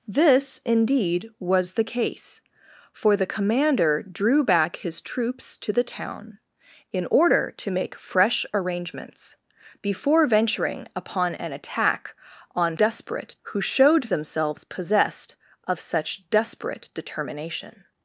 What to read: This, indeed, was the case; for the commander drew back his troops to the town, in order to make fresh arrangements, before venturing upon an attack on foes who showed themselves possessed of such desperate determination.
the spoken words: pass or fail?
fail